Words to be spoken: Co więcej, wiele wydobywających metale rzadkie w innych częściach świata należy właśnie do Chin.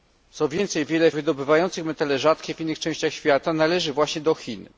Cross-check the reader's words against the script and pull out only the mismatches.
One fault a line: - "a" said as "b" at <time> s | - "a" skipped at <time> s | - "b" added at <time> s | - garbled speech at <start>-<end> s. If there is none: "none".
none